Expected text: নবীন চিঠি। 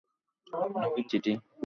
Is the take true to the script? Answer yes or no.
yes